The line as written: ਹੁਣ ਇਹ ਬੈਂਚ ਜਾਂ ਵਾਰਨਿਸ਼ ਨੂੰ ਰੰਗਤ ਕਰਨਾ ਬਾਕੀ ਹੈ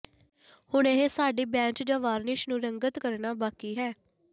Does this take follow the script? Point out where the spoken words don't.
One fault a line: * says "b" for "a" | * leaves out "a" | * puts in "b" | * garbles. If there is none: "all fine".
* puts in "ਸਾਡੀ"